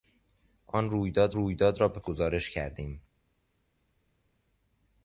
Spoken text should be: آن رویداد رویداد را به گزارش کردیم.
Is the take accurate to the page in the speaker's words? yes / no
yes